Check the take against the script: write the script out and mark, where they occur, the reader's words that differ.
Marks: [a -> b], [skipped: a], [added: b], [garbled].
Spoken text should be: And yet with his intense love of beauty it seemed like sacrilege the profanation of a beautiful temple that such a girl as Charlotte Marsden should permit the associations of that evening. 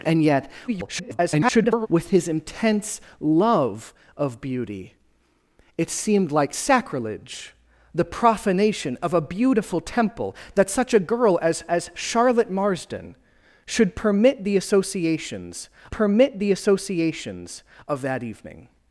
And yet [garbled] with his intense love of beauty it seemed like sacrilege the profanation of a beautiful temple that such a girl as [added: as] Charlotte Marsden should permit the associations [added: permit the associations] of that evening.